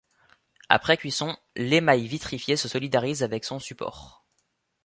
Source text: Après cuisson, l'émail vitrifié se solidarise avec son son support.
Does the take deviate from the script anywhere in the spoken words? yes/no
yes